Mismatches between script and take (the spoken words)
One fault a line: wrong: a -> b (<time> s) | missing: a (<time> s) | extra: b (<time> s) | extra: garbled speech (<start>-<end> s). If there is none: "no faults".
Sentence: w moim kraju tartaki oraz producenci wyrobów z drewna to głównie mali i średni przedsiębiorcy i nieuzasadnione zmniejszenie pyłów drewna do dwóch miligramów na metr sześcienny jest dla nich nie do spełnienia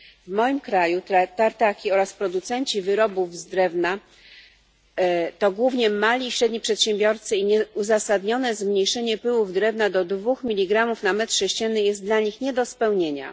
no faults